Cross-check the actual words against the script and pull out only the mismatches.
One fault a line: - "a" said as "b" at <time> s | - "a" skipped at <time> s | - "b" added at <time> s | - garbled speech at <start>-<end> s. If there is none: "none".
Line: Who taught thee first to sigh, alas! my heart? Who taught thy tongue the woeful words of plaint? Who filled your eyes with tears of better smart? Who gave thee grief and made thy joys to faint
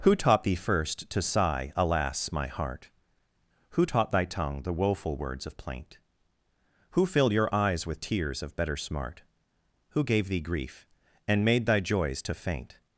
none